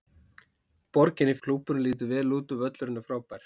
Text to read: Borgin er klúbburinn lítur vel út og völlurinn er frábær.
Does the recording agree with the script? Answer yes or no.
yes